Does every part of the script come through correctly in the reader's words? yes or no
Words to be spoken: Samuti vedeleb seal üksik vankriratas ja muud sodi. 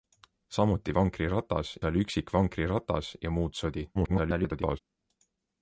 no